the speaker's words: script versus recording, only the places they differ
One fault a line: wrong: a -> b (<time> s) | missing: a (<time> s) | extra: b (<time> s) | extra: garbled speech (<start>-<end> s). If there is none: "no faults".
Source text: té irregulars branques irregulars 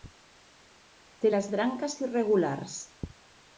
wrong: irregulars -> les (1.3 s)